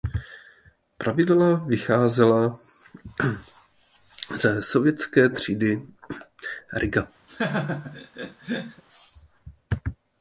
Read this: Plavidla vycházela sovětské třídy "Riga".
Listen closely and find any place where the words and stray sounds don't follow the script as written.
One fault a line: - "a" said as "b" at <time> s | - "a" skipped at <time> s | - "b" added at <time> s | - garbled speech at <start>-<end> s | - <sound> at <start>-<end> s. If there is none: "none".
- "ze" added at 4.3 s
- laugh at 7.3-8.8 s